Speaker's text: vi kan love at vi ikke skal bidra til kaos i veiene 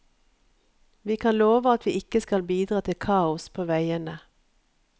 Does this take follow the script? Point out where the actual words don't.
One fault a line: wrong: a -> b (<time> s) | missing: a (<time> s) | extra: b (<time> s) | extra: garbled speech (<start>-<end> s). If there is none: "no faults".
wrong: i -> på (3.5 s)